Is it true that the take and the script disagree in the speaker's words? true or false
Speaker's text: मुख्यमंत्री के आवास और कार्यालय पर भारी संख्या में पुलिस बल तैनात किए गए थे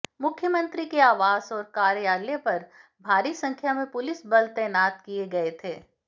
false